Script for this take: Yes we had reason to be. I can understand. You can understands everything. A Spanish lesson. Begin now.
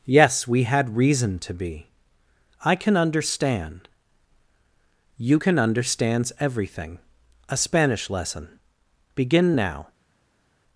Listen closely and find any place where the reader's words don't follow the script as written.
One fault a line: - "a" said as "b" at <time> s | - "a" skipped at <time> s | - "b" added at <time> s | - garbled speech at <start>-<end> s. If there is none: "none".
none